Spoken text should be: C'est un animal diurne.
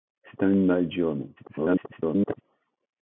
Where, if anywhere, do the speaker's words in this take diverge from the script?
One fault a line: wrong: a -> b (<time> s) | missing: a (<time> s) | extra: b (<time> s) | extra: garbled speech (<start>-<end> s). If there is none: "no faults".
extra: garbled speech (1.4-2.4 s)